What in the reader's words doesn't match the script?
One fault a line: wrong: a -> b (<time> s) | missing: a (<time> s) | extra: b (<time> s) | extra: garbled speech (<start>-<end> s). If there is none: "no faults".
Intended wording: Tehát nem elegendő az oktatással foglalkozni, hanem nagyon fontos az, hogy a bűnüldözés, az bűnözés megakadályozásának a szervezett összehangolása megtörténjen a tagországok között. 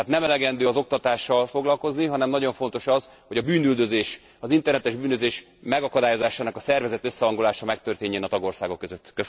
extra: internetes (4.5 s)